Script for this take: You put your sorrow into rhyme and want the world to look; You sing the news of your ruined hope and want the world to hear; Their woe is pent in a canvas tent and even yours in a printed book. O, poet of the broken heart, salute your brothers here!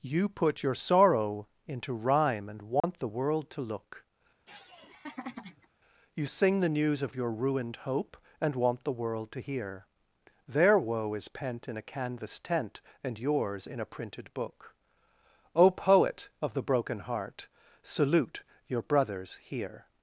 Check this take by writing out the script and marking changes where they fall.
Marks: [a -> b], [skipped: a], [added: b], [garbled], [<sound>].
You put your sorrow into rhyme and want [dropout] the world to look; [laugh] You sing the news of your ruined hope and want the world to hear; Their woe is pent in a canvas tent and [skipped: even] yours in a printed book. O, poet of the broken heart, salute your brothers here!